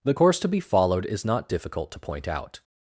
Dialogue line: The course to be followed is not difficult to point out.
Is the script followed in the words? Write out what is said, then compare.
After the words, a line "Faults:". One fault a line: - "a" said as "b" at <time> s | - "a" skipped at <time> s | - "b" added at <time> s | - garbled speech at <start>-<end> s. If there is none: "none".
The course to be followed is not difficult to point out.
Faults:
none